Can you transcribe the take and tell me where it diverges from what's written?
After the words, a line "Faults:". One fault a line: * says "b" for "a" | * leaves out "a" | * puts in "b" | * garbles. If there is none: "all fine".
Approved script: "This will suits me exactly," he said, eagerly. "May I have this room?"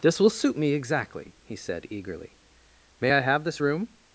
"This will suit me exactly," he said, eagerly. "May I have this room?"
Faults:
* says "suit" for "suits"